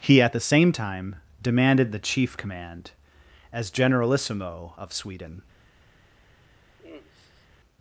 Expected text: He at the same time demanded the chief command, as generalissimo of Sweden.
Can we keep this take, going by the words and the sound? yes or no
no